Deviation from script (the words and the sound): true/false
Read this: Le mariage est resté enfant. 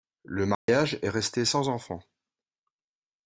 true